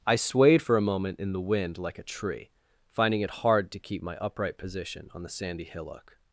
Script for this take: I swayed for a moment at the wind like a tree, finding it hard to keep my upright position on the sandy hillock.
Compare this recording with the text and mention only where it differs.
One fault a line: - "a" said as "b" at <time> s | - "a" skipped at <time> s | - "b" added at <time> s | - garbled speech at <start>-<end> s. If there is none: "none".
- "at" said as "in" at 1.2 s